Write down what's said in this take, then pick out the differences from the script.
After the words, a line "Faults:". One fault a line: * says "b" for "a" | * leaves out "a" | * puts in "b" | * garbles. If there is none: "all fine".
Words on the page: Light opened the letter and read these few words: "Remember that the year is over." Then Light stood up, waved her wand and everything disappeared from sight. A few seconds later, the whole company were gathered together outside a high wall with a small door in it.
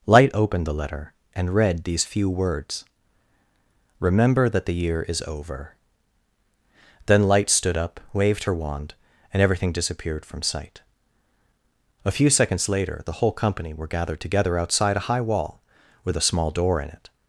Light opened the letter and read these few words: "Remember that the year is over." Then Light stood up, waved her wand and everything disappeared from sight. A few seconds later, the whole company were gathered together outside a high wall with a small door in it.
Faults:
all fine